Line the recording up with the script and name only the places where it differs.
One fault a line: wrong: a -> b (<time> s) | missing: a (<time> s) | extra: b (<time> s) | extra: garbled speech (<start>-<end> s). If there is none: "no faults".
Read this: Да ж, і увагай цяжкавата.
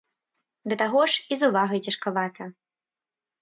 extra: таго (0.8 s)
extra: з (1.4 s)